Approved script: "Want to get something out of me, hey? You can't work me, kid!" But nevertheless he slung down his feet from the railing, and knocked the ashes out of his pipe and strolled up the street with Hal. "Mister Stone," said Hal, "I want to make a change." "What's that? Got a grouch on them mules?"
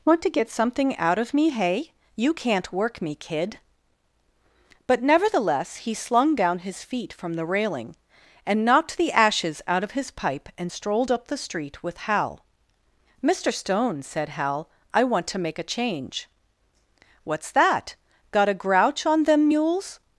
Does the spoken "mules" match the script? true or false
true